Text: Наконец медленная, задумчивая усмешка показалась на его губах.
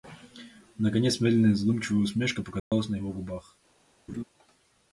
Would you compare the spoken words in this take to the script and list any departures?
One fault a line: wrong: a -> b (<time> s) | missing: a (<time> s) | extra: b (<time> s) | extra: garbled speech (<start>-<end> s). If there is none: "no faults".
no faults